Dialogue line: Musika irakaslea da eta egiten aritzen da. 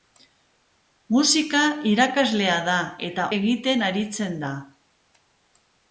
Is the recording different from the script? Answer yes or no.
no